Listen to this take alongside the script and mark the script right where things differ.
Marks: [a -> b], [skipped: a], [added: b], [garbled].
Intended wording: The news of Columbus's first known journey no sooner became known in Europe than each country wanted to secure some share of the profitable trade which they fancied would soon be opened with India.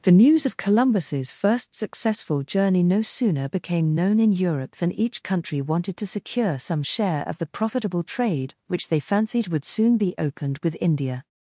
The news of Columbus's first [known -> successful] journey no sooner became known in Europe than each country wanted to secure some share of the profitable trade which they fancied would soon be opened with India.